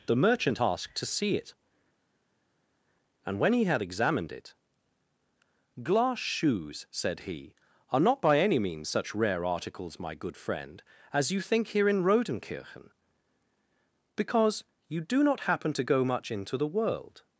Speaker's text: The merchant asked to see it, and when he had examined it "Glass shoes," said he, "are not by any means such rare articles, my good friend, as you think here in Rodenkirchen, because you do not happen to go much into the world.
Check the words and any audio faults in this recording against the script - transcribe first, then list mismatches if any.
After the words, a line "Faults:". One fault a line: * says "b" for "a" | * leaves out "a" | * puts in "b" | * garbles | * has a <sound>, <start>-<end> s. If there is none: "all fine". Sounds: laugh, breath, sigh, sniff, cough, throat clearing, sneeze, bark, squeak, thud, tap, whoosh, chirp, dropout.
The merchant asked to see it, and when he had examined it "Glass shoes," said he, "are not by any means such rare articles, my good friend, as you think here in Rodenkirchen, because you do not happen to go much into the world.
Faults:
all fine